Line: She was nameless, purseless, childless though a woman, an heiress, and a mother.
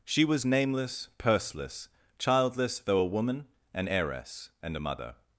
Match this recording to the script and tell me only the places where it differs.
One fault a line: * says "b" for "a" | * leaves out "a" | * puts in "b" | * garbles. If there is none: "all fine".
all fine